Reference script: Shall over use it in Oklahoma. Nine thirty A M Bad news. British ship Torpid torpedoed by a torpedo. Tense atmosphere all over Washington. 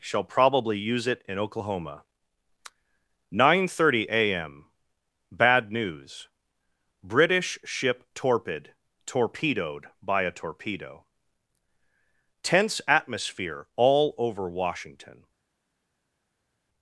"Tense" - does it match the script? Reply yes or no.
yes